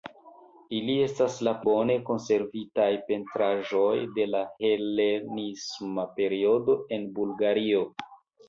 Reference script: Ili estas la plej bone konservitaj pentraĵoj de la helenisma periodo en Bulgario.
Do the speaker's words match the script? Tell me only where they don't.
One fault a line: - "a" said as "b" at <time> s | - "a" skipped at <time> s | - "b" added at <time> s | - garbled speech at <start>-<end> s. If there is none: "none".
- "plej" skipped at 1.5 s